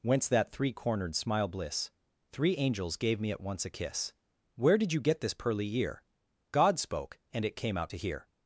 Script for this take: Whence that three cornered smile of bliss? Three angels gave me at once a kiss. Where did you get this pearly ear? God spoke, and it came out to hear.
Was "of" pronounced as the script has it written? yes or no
no